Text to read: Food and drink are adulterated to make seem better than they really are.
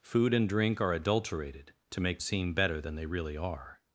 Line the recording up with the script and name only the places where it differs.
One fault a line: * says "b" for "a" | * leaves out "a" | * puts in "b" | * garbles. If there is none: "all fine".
all fine